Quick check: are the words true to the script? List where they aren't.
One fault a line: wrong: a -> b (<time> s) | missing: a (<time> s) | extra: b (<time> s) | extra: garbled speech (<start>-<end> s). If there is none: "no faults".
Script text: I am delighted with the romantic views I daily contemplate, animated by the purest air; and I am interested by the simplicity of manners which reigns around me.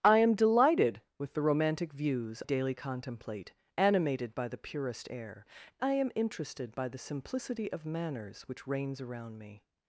missing: I (2.4 s)
missing: and (5.4 s)